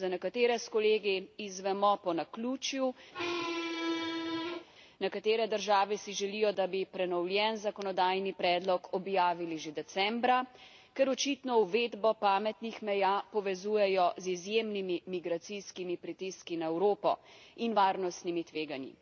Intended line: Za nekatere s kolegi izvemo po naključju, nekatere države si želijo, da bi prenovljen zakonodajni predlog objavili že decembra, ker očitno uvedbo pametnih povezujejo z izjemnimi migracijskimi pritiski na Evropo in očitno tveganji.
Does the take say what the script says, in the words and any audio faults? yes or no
no